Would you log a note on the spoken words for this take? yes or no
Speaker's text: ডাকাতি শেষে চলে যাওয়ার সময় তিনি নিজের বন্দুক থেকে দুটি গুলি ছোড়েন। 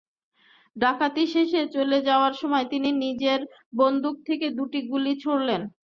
no